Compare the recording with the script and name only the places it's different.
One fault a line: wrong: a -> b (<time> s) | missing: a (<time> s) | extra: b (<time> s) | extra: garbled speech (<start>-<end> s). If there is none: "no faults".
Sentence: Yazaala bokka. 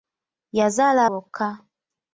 no faults